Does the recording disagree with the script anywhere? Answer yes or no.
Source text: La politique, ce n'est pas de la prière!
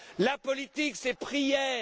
yes